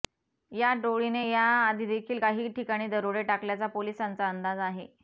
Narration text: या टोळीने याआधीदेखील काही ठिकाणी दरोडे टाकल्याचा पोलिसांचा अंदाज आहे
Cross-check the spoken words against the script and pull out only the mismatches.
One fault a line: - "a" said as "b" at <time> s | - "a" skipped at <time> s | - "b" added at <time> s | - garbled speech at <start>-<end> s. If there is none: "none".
none